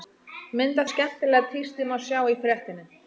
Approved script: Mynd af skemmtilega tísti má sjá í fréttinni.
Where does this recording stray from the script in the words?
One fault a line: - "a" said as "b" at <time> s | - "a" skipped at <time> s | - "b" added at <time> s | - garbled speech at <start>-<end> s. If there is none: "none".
none